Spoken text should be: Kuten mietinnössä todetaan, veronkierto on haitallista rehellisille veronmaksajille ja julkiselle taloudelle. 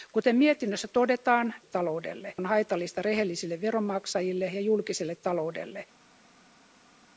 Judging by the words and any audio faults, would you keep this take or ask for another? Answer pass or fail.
fail